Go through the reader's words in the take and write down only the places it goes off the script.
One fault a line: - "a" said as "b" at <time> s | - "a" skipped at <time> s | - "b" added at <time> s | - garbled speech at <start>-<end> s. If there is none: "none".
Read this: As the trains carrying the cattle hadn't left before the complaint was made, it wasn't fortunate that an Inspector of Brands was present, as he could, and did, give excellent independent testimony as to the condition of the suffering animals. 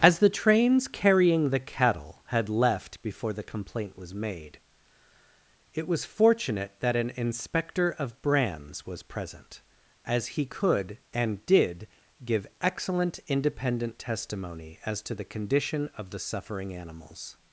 - "hadn't" said as "had" at 2.3 s
- "wasn't" said as "was" at 5.9 s